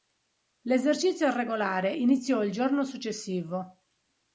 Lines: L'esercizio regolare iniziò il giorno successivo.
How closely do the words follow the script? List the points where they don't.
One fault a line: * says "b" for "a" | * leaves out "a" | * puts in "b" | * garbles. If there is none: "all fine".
all fine